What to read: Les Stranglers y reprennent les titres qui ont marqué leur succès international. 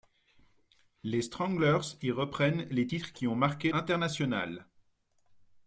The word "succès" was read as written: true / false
false